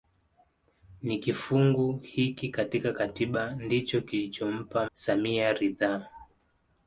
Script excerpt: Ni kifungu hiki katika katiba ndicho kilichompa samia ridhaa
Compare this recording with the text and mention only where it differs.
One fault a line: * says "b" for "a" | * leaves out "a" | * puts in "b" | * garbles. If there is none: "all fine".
all fine